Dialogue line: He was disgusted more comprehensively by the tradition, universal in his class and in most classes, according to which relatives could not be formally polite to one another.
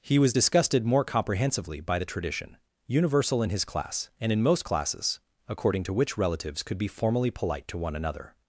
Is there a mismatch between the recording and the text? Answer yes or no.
yes